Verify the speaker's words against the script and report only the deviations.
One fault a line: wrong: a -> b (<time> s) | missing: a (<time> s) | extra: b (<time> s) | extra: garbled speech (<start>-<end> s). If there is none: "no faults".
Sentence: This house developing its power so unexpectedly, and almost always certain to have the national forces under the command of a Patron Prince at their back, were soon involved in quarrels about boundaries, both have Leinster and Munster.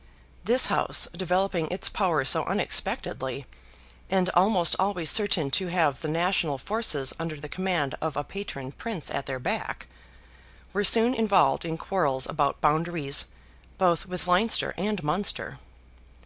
wrong: have -> with (14.1 s)